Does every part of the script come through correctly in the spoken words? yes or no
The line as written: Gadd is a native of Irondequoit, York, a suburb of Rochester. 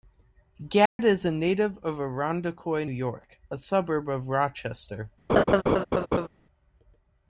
yes